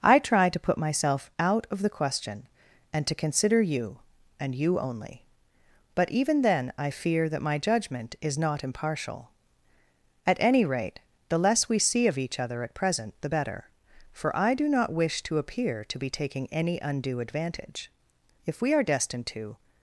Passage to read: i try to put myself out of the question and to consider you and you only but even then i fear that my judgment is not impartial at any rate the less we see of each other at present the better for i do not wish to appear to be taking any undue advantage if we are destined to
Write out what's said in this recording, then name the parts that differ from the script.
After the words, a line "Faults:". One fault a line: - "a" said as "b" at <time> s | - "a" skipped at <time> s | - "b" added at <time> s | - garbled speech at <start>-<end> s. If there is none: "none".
i try to put myself out of the question and to consider you and you only but even then i fear that my judgment is not impartial at any rate the less we see of each other at present the better for i do not wish to appear to be taking any undue advantage if we are destined to
Faults:
none